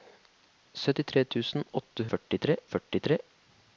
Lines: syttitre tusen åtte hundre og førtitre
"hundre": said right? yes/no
no